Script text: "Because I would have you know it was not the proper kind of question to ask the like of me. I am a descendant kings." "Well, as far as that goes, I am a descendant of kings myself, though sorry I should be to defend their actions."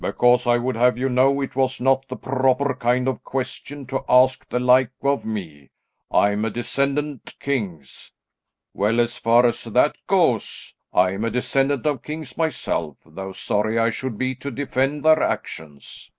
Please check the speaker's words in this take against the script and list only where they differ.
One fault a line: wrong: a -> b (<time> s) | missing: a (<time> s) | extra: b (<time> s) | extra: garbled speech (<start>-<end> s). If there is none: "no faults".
no faults